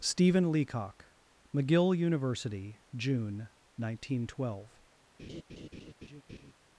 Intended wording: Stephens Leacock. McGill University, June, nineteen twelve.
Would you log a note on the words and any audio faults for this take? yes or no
yes